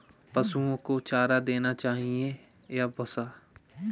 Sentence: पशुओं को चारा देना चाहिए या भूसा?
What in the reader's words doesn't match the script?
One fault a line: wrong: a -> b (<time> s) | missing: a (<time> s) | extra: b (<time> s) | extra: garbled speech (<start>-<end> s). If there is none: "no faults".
no faults